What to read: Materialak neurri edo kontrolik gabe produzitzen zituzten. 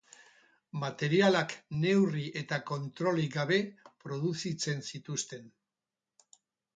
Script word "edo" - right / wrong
wrong